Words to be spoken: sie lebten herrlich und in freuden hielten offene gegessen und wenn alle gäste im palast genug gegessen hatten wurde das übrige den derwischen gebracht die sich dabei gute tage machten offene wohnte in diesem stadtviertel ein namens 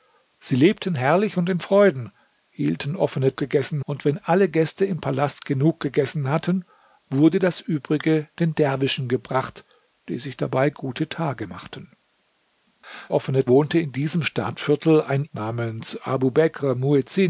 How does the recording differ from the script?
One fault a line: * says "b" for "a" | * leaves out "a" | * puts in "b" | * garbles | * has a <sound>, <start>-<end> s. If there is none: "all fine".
all fine